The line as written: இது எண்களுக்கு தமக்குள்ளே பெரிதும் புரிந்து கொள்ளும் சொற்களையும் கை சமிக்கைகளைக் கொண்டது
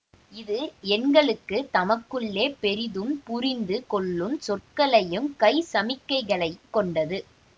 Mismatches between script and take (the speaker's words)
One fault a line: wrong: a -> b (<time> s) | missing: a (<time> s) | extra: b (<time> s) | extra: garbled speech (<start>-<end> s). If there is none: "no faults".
no faults